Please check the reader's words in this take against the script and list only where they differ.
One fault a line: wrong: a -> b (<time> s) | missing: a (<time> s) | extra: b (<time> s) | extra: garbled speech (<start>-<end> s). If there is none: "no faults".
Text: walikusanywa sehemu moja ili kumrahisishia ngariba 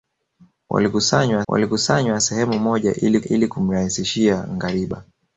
extra: walikusanywa (1.5 s)
extra: ili (3.2 s)